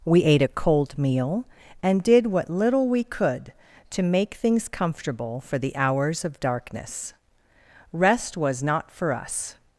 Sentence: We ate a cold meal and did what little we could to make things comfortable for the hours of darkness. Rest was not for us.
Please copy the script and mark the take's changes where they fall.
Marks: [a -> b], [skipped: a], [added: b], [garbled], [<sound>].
We ate a cold meal and did what little we could to make things comfortable for the hours of darkness. Rest was not for us.